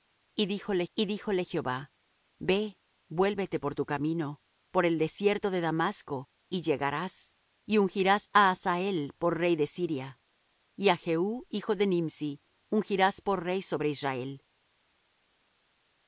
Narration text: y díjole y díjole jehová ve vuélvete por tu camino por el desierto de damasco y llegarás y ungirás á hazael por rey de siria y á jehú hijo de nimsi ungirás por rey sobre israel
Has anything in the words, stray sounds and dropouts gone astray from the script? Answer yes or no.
no